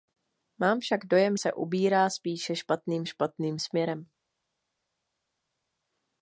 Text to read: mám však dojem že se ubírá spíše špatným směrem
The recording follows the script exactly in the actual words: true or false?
false